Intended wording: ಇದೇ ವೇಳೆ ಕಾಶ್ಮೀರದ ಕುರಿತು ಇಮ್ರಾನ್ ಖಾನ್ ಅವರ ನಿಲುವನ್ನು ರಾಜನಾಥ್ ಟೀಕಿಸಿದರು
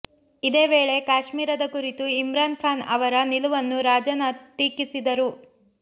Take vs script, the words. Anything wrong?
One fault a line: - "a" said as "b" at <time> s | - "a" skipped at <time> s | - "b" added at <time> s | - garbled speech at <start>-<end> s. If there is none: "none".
none